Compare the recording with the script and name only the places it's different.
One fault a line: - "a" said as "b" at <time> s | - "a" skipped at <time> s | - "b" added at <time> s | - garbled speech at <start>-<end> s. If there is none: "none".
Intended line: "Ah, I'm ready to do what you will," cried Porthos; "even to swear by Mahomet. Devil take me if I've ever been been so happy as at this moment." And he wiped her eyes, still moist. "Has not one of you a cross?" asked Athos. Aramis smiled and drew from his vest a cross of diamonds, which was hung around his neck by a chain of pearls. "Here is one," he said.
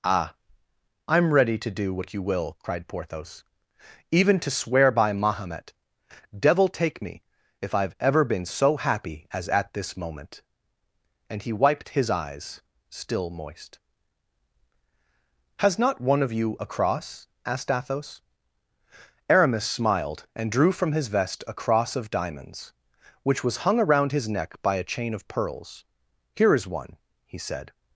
- "been" skipped at 8.5 s
- "her" said as "his" at 11.9 s